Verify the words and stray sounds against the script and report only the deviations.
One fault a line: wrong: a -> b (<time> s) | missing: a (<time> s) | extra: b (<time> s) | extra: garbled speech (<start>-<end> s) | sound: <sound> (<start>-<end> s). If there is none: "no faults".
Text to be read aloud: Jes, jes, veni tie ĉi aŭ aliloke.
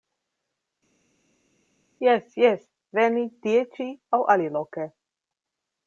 no faults